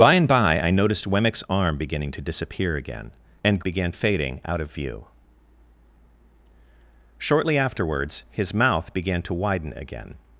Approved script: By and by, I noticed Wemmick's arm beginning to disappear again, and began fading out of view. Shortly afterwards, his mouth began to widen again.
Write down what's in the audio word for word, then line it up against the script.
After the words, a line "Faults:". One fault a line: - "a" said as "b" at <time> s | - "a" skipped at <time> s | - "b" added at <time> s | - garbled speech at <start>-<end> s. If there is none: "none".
By and by, I noticed Wemmick's arm beginning to disappear again, and began fading out of view. Shortly afterwards, his mouth began to widen again.
Faults:
none